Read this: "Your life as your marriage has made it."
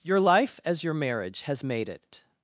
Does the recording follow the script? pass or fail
pass